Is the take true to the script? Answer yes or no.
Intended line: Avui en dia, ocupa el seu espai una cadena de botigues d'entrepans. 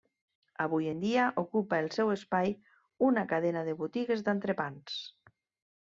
yes